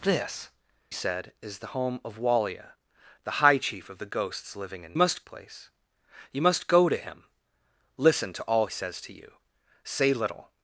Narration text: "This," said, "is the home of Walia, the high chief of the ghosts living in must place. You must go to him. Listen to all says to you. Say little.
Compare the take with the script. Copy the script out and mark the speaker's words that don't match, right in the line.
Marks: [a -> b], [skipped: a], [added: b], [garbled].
"This," said, "is the home of Walia, the high chief of the ghosts living in must place. You must go to him. Listen to all says to you. Say little.